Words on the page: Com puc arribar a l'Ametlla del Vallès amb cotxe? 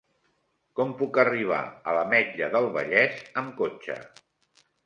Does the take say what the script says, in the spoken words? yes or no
yes